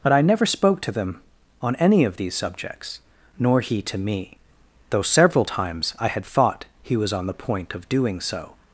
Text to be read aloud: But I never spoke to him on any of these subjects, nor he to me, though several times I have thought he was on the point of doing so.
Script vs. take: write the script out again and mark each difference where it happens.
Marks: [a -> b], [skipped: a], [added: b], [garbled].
But I never spoke to [him -> them] on any of these subjects, nor he to me, though several times I [have -> had] thought he was on the point of doing so.